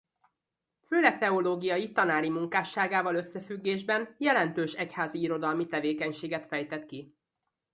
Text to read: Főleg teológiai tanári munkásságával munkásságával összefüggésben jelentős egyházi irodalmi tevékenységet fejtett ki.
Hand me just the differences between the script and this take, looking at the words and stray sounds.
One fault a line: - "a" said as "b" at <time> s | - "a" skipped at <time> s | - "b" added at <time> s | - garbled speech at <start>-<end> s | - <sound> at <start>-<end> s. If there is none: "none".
- "munkásságával" skipped at 3.1 s